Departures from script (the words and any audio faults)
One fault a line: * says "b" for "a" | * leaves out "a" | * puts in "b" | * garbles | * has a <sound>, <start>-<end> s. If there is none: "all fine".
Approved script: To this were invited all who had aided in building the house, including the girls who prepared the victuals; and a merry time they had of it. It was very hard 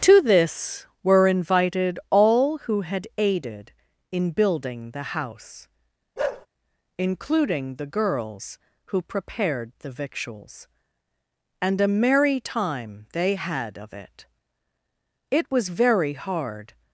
* has a bark, 6.2-6.5 s